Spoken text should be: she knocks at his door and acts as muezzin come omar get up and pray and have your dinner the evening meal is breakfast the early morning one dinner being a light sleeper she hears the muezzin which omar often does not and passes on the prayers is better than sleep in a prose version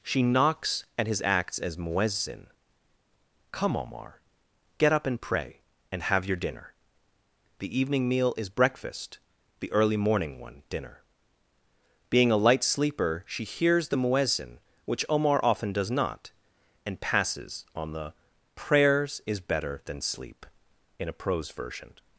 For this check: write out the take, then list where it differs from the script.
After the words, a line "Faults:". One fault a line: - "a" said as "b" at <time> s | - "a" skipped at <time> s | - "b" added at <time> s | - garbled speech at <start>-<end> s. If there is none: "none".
she knocks at his acts as muezzin come omar get up and pray and have your dinner the evening meal is breakfast the early morning one dinner being a light sleeper she hears the muezzin which omar often does not and passes on the prayers is better than sleep in a prose version
Faults:
- "door and" skipped at 1.2 s